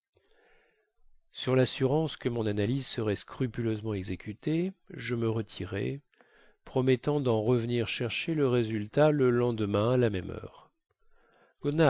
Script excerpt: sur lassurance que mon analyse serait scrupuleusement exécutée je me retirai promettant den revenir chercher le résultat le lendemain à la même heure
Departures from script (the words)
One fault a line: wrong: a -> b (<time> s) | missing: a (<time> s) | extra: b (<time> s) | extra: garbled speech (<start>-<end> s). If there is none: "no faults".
no faults